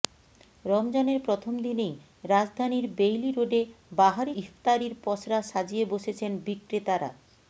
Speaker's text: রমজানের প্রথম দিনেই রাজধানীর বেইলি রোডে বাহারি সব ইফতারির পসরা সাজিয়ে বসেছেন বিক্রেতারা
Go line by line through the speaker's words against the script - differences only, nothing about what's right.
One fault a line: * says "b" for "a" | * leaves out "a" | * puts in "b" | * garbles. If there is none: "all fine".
* leaves out "সব"